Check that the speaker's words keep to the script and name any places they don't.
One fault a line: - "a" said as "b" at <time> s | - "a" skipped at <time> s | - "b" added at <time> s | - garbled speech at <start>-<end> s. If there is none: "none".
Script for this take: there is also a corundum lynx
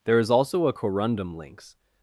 none